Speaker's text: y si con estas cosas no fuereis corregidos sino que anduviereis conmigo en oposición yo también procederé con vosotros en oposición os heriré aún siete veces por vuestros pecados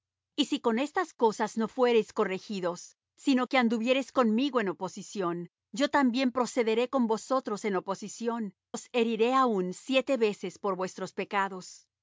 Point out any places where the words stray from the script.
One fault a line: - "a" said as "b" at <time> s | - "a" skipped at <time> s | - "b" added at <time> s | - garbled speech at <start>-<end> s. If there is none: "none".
none